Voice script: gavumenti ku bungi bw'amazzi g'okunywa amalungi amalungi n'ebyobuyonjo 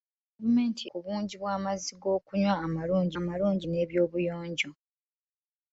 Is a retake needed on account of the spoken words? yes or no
no